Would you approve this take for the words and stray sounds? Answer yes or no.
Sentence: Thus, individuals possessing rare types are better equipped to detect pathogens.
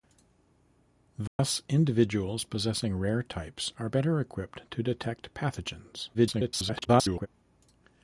no